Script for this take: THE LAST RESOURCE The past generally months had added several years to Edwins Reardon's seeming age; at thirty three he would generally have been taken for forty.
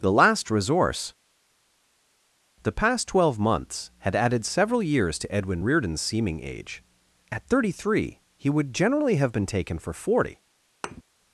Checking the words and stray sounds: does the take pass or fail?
fail